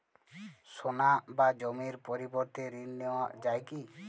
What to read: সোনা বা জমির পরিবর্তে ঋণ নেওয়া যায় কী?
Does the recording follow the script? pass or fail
pass